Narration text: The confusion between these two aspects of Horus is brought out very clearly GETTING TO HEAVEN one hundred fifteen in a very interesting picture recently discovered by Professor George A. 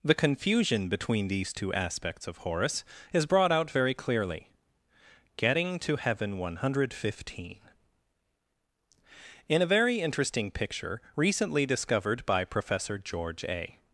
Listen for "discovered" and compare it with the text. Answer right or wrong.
right